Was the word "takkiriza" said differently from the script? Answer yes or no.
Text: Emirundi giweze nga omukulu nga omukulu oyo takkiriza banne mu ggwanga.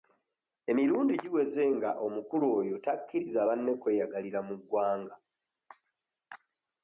no